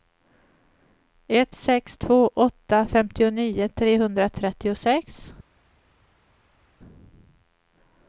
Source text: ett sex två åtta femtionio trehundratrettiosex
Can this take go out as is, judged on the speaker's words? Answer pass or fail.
pass